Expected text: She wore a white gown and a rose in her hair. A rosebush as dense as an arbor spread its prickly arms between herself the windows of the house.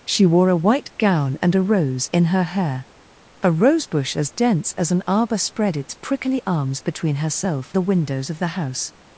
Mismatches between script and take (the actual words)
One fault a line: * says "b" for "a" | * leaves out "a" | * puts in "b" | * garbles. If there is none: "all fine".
all fine